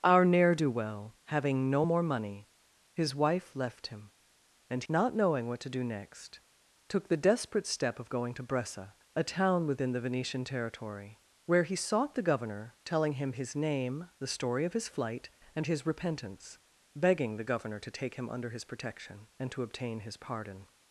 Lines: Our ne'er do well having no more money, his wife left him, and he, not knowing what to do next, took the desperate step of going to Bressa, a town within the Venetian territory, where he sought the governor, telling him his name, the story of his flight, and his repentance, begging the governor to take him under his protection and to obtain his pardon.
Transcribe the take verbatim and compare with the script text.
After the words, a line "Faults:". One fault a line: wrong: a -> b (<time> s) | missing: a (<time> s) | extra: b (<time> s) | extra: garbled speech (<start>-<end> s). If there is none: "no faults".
Our ne'er do well having no more money, his wife left him, and not knowing what to do next, took the desperate step of going to Bressa, a town within the Venetian territory, where he sought the governor, telling him his name, the story of his flight, and his repentance, begging the governor to take him under his protection and to obtain his pardon.
Faults:
missing: he (4.8 s)